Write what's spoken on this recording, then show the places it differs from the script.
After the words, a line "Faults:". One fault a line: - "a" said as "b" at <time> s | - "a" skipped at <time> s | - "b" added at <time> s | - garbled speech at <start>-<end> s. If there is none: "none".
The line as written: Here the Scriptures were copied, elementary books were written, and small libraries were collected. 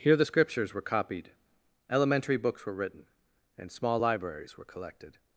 Here the Scriptures were copied, elementary books were written, and small libraries were collected.
Faults:
none